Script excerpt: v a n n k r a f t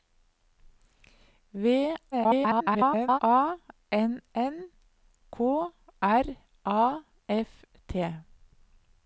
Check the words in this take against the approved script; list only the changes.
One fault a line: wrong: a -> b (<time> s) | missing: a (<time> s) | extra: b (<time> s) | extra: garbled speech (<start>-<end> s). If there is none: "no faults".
extra: garbled speech (2.1-3.2 s)